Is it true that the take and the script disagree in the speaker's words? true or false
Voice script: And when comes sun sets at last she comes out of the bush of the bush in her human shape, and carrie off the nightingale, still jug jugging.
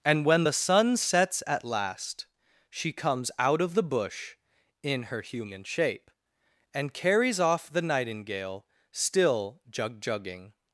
true